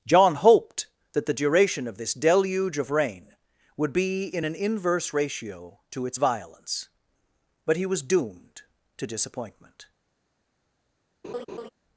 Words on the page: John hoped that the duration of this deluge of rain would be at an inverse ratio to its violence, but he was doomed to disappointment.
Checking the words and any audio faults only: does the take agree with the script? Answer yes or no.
no